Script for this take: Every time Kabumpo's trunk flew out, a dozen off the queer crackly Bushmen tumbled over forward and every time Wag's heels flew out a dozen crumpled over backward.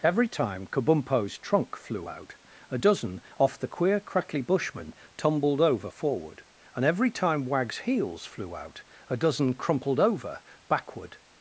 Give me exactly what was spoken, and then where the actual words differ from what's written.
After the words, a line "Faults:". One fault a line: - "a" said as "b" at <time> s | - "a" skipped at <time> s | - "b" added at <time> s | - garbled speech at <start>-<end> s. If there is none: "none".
Every time Kabumpo's trunk flew out, a dozen off the queer crackly Bushmen tumbled over forward and every time Wag's heels flew out a dozen crumpled over backward.
Faults:
none